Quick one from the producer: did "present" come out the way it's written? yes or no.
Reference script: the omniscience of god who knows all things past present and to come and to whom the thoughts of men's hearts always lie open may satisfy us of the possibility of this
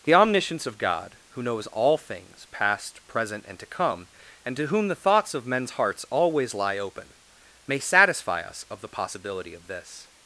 yes